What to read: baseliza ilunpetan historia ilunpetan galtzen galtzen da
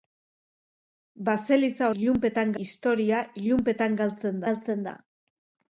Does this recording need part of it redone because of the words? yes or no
no